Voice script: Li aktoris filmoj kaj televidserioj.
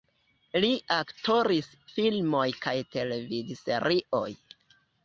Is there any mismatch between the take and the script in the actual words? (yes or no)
no